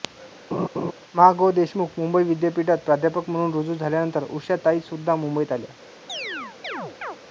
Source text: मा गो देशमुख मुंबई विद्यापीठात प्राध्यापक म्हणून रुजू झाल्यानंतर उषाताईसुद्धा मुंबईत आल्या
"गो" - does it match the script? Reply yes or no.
yes